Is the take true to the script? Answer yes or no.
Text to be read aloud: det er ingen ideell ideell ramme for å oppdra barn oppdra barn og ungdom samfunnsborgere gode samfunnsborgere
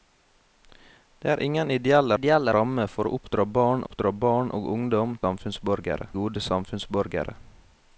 yes